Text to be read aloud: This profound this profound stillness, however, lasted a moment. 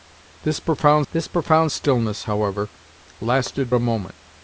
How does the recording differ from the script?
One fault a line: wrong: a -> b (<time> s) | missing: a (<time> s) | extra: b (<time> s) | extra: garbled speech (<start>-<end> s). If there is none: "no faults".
no faults